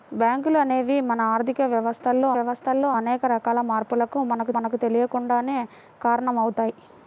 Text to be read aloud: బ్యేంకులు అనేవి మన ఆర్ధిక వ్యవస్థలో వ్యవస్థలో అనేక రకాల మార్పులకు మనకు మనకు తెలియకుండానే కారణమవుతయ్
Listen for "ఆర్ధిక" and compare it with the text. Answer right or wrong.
right